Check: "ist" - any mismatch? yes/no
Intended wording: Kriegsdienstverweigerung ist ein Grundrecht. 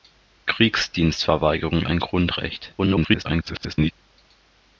yes